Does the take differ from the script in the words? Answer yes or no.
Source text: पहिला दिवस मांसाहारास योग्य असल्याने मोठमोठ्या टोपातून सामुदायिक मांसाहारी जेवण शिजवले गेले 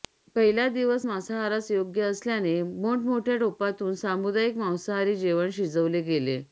no